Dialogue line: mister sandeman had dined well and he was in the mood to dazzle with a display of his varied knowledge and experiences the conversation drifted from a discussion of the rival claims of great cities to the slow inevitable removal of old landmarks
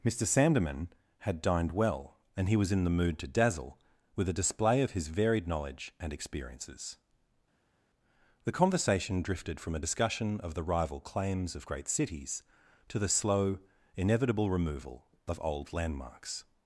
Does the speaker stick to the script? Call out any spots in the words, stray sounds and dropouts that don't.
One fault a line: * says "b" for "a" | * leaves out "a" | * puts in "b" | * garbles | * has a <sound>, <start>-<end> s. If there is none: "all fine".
all fine